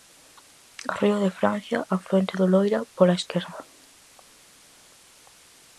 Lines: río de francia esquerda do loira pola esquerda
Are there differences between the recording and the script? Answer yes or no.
yes